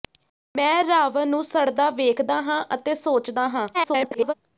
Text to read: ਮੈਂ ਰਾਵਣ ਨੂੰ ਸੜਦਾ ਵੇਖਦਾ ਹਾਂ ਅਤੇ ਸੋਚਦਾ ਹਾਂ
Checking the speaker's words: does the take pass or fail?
fail